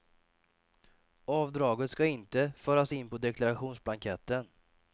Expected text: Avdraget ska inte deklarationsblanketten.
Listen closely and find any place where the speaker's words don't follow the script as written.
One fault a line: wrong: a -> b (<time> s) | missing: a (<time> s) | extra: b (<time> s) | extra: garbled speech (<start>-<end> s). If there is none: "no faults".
extra: föras in på (2.6 s)